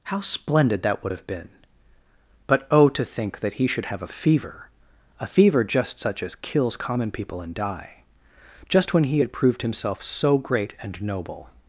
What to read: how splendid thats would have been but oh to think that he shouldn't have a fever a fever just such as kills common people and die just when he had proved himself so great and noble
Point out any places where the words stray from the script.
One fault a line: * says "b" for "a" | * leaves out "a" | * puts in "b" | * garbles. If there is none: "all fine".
* says "that" for "thats"
* says "should" for "shouldn't"